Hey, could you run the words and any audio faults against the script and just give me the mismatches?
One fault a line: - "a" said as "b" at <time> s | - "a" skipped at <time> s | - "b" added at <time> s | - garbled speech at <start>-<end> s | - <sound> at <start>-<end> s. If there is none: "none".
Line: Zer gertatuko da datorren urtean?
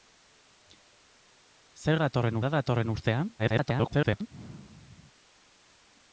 - "gertatuko" said as "datorren" at 2.0 s
- garbled speech at 3.4-4.3 s